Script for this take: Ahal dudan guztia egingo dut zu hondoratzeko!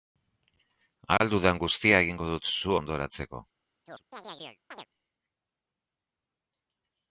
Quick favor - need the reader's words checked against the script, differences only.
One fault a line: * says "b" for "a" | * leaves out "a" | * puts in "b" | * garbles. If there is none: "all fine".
all fine